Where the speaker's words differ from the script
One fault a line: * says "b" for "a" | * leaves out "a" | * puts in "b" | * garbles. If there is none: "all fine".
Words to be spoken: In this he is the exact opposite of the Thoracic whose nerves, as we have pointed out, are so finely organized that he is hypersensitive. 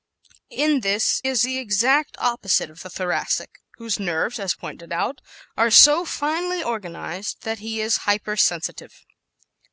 * leaves out "he"
* leaves out "we have"